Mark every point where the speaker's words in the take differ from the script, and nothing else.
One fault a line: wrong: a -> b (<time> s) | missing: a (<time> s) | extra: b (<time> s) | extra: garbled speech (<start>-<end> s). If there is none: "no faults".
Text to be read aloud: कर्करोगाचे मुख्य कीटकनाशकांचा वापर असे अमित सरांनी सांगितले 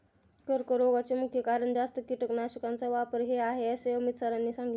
extra: कारण जास्त (1.4 s)
extra: हे आहे (3.2 s)